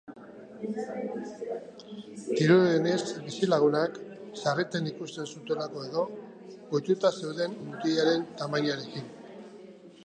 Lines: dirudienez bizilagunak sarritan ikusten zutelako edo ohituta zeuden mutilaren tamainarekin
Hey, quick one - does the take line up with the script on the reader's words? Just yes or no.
yes